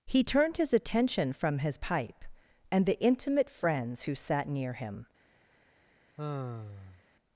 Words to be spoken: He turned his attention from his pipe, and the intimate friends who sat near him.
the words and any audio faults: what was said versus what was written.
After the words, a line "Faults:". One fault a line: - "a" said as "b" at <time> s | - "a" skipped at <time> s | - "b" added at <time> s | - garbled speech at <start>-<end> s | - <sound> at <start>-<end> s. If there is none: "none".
He turned his attention from his pipe, and the intimate friends who sat near him.
Faults:
- sigh at 6.2-7.0 s